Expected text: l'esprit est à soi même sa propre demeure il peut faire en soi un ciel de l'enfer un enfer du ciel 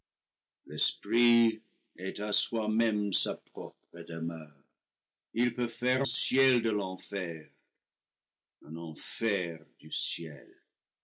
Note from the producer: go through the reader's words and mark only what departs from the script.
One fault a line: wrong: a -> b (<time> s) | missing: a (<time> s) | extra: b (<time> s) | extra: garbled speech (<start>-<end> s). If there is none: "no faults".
missing: en soi un (6.1 s)